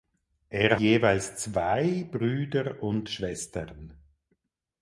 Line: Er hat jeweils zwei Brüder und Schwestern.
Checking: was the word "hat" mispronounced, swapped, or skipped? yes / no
yes